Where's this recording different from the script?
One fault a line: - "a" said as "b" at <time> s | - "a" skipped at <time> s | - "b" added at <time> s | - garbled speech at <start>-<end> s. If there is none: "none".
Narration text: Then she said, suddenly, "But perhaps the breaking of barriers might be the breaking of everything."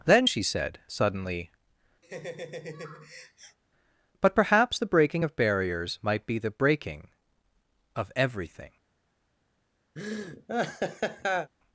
none